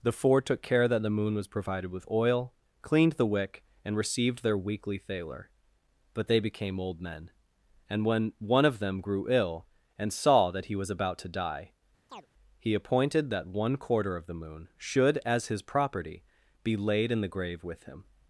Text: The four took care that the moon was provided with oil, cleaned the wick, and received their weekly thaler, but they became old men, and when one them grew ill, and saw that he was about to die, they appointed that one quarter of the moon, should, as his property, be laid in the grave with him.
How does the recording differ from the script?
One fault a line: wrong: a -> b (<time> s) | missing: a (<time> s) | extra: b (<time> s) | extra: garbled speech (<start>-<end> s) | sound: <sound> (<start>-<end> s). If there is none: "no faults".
extra: of (8.7 s)
sound: chirp (12.1-12.3 s)
wrong: they -> he (12.6 s)